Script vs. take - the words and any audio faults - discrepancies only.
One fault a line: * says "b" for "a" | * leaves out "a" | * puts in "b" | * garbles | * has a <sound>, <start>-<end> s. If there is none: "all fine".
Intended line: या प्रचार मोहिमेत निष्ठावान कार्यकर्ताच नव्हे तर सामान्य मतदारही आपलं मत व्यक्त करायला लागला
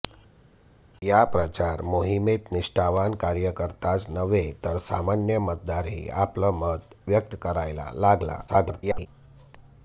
* garbles